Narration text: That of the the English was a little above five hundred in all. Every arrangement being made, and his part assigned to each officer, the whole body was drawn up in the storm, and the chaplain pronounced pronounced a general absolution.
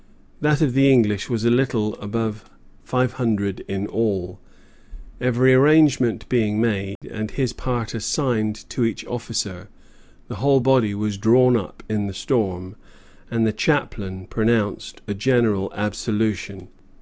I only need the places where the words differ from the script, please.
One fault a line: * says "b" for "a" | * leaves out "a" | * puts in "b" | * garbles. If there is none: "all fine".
* leaves out "the"
* leaves out "pronounced"